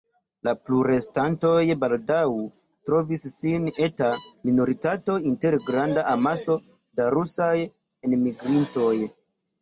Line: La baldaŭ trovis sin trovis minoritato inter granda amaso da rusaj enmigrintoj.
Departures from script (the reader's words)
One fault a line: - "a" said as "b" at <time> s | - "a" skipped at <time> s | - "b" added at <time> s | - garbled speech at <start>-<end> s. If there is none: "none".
- "plurestantoj" added at 0.7 s
- "trovis" said as "eta" at 3.9 s